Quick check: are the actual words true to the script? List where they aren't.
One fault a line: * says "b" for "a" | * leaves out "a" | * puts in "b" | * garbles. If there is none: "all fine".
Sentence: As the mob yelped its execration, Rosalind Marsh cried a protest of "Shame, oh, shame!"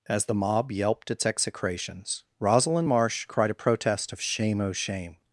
* says "execrations" for "execration"